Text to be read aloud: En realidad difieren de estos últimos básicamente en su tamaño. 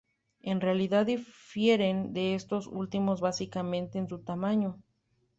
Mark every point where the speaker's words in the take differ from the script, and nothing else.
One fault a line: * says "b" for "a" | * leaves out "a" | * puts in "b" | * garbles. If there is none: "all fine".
all fine